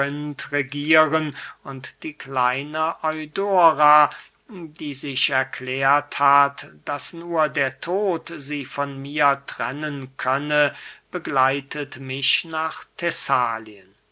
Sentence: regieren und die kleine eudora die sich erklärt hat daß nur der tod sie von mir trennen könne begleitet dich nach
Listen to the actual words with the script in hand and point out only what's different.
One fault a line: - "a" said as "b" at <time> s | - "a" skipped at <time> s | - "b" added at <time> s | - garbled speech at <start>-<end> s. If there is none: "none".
- "dich" said as "mich" at 12.0 s